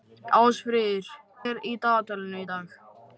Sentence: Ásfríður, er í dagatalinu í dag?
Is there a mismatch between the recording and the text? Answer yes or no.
no